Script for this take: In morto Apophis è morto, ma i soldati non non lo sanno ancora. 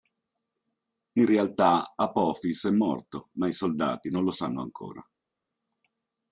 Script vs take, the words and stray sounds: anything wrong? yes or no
yes